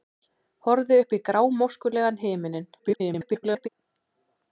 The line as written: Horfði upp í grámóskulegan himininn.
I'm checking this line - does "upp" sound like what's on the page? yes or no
yes